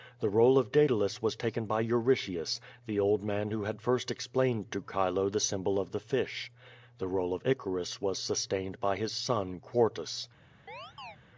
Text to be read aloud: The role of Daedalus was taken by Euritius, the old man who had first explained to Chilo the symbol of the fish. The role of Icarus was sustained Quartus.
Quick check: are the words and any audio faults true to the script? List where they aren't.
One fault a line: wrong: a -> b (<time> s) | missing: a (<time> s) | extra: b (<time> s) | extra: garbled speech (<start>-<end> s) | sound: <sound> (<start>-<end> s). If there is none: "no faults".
extra: by his son (8.8 s)
sound: chirp (10.7-11.2 s)